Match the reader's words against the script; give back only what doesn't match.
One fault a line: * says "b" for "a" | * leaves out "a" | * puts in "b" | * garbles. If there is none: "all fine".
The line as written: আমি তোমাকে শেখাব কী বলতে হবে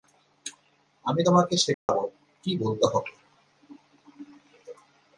all fine